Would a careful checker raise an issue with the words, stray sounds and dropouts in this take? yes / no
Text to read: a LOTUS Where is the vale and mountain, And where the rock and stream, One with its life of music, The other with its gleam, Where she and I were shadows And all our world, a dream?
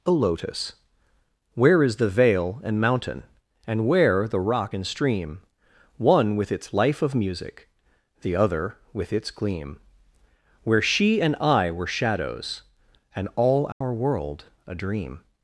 yes